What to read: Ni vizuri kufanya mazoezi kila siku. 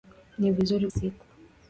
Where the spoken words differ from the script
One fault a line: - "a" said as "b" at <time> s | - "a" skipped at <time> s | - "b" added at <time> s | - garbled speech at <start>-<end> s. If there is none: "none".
- "kufanya mazoezi kila" skipped at 0.9 s